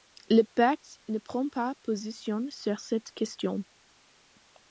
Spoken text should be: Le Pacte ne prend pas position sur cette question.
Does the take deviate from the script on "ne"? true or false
false